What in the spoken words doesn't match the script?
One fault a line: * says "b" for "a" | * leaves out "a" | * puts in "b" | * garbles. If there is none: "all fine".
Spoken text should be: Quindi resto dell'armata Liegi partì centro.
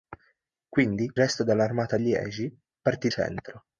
all fine